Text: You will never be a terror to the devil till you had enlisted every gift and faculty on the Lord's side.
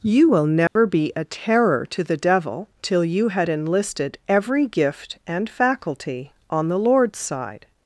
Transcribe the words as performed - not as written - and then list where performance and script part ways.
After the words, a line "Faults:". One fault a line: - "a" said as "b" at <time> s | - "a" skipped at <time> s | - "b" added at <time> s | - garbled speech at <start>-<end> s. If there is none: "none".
You will never be a terror to the devil till you had enlisted every gift and faculty on the Lord's side.
Faults:
none